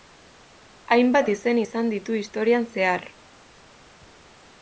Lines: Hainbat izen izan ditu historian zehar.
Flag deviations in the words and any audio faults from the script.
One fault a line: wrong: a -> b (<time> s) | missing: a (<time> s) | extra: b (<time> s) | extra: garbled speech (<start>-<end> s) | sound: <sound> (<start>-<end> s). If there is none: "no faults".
no faults